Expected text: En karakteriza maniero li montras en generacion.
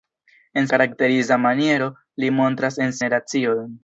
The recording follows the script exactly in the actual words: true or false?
true